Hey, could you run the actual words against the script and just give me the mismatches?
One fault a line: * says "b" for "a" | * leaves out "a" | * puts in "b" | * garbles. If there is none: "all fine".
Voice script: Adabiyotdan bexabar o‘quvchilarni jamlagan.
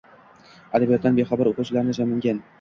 all fine